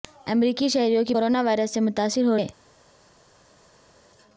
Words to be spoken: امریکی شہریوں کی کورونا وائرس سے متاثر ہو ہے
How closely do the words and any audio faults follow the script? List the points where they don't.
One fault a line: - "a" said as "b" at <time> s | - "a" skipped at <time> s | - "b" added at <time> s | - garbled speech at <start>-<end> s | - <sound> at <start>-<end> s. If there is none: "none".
none